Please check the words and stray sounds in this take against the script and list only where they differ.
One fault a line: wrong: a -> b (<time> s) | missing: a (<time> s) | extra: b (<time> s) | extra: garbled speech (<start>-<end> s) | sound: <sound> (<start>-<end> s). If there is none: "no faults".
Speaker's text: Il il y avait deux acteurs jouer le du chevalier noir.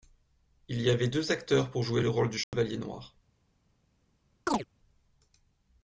missing: il (0.8 s)
extra: pour (1.7 s)
extra: rôle (2.1 s)
sound: dropout (2.4-2.5 s)
sound: chirp (4.5-4.6 s)